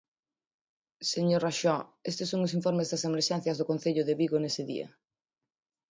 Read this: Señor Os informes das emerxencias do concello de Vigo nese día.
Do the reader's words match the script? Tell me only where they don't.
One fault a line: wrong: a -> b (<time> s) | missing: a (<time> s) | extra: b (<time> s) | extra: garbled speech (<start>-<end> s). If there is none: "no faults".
extra: Raxó estes son (1.4 s)